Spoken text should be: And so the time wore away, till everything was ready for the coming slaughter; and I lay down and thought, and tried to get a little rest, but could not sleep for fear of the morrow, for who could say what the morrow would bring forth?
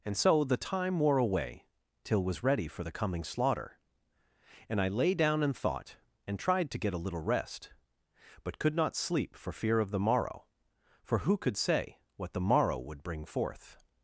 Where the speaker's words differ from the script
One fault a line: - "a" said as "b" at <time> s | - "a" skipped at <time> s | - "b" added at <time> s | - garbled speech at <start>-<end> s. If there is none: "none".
- "everything" skipped at 2.2 s